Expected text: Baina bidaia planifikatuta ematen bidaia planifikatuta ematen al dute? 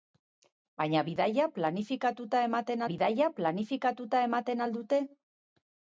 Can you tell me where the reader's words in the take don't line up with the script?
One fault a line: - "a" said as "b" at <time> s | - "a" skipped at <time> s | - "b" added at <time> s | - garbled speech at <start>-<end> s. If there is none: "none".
none